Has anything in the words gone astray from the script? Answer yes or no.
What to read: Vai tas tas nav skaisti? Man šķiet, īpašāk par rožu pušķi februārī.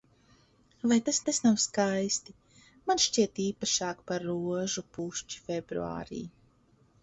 no